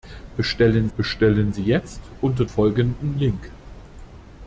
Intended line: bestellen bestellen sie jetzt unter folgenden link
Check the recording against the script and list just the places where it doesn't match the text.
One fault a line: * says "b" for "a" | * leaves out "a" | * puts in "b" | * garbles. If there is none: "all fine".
all fine